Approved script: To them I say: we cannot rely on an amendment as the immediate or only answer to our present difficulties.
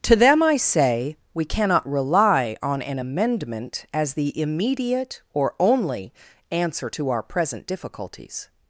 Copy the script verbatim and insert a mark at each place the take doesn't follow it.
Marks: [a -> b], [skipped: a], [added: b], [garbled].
To them I say: we cannot rely on an amendment as the immediate or only answer to our present difficulties.